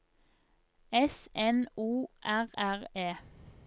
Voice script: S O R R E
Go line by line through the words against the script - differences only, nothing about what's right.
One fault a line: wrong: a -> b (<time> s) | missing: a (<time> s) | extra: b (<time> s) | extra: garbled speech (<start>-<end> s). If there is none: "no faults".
extra: N (1.4 s)